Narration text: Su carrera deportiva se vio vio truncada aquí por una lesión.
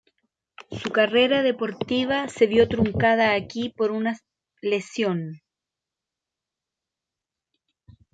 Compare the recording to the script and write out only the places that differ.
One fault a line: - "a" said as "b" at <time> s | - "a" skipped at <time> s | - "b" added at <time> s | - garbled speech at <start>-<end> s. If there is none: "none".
- "vio" skipped at 2.7 s